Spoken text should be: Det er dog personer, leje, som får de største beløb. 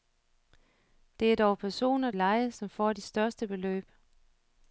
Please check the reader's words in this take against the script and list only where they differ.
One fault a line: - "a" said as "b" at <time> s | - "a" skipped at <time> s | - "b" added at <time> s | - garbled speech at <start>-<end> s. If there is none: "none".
none